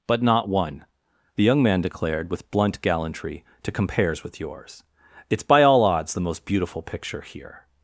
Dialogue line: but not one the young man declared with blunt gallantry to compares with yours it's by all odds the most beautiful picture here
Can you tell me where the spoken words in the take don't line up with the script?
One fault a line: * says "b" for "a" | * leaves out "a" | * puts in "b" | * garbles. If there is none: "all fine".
all fine